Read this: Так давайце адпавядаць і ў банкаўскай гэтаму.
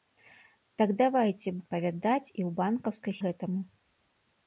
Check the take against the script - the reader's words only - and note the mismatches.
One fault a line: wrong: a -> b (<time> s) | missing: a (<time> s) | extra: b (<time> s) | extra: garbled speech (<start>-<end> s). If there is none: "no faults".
no faults